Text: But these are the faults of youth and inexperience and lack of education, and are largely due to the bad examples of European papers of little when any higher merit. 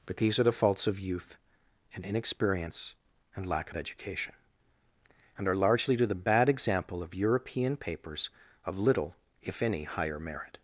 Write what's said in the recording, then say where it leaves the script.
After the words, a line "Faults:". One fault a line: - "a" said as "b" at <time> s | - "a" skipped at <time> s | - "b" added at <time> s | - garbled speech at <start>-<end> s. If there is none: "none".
But these are the faults of youth and inexperience and lack of education, and are largely due to the bad example of European papers of little if any higher merit.
Faults:
- "examples" said as "example" at 6.5 s
- "when" said as "if" at 9.4 s